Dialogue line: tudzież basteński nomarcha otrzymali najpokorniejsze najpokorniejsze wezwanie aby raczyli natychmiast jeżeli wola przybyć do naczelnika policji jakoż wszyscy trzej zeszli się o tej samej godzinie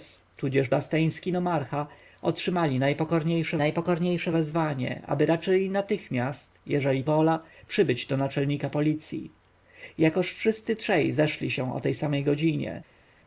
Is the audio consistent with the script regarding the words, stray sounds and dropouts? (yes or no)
yes